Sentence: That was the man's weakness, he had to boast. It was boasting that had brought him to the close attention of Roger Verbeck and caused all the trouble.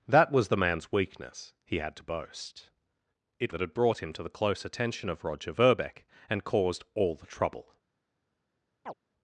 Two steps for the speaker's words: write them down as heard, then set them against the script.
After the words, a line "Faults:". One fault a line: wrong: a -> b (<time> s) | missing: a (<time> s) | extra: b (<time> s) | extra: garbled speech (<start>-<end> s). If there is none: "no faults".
That was the man's weakness, he had to boast. It that had brought him to the close attention of Roger Verbeck and caused all the trouble.
Faults:
missing: was boasting (3.5 s)